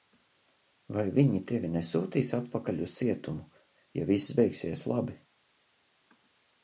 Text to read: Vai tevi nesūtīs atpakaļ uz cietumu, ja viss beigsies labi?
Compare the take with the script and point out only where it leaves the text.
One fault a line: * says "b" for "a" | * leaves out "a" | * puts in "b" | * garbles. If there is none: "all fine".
* puts in "viņi"